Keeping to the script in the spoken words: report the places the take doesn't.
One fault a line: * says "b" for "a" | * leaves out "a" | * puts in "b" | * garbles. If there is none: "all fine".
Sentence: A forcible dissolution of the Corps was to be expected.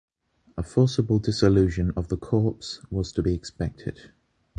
all fine